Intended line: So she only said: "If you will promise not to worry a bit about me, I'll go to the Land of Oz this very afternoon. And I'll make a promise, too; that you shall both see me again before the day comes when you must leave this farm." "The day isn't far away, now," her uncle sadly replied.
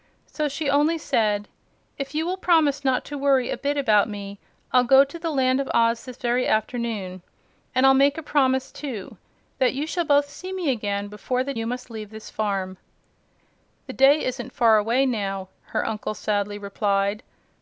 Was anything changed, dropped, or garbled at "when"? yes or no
yes